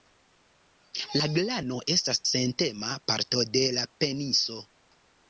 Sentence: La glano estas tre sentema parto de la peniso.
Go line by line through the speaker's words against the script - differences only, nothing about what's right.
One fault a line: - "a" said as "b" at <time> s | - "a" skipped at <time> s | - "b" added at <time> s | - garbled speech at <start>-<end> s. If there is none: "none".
- "tre" skipped at 2.2 s